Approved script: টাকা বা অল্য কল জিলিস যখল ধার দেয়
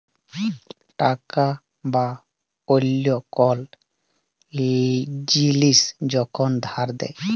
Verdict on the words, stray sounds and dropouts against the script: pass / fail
pass